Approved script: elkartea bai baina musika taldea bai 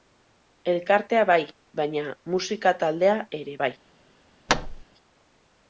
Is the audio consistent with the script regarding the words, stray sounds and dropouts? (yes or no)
no